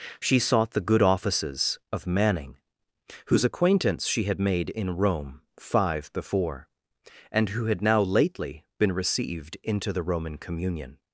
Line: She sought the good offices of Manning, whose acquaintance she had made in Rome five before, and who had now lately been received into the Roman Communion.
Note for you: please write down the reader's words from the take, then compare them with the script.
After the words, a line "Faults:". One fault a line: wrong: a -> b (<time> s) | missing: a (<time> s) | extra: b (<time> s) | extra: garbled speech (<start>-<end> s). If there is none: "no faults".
She sought the good offices of Manning, whose acquaintance she had made in Rome five before, and who had now lately been received into the Roman Communion.
Faults:
no faults